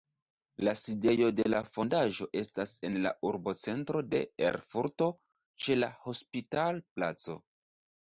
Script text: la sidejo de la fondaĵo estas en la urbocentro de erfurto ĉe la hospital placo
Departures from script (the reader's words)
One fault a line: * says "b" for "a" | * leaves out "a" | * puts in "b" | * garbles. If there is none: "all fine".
all fine